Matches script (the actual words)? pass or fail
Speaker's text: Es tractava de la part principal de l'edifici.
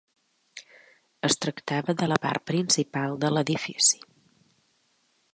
pass